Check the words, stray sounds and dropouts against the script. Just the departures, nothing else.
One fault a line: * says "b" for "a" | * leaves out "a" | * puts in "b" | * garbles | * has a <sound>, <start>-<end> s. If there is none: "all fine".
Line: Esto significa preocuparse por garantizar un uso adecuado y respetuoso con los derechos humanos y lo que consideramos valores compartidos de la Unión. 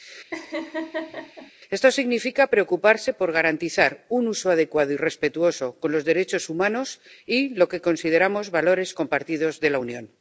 * has a laugh, 0.3-1.5 s